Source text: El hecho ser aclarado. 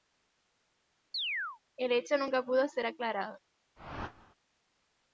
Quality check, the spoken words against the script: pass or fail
fail